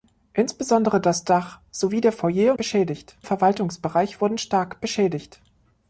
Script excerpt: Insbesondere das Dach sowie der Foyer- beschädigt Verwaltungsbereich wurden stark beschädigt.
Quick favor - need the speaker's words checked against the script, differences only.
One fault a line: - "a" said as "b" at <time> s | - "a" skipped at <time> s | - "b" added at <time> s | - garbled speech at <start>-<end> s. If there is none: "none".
none